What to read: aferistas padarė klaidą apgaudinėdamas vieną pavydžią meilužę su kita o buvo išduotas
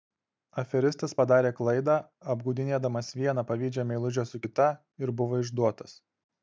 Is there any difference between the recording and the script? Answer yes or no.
yes